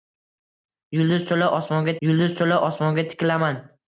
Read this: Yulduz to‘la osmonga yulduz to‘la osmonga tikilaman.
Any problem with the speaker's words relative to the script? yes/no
no